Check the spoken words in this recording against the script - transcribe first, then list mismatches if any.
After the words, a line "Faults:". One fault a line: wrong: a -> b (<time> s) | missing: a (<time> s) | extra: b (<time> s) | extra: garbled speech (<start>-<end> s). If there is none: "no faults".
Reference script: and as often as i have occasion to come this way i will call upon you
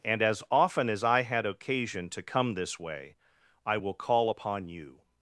and as often as i had occasion to come this way i will call upon you
Faults:
wrong: have -> had (1.2 s)